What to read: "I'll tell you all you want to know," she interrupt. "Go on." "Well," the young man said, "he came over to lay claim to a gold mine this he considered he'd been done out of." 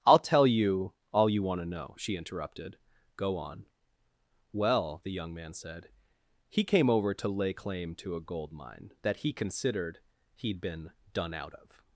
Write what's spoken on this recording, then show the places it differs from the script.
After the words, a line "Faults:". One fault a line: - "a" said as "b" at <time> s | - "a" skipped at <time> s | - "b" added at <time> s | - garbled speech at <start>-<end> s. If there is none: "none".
"I'll tell you all you want to know," she interrupted. "Go on." "Well," the young man said, "he came over to lay claim to a gold mine that he considered he'd been done out of."
Faults:
- "interrupt" said as "interrupted" at 2.1 s
- "this" said as "that" at 9.0 s